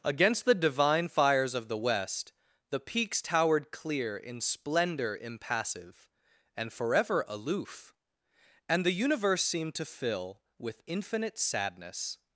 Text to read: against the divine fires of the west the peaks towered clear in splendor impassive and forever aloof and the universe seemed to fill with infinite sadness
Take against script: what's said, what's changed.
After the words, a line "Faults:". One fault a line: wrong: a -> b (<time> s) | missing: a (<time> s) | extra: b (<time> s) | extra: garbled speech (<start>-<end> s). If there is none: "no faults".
against the divine fires of the west the peaks towered clear in splendor impassive and forever aloof and the universe seemed to fill with infinite sadness
Faults:
no faults